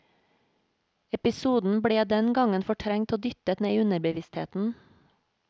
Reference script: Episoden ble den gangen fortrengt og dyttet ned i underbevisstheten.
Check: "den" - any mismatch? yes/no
no